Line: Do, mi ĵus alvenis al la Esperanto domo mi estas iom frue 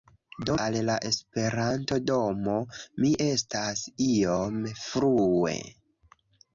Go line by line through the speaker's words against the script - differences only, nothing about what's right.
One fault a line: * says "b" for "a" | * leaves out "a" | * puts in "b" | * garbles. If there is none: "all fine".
* leaves out "mi ĵus alvenis"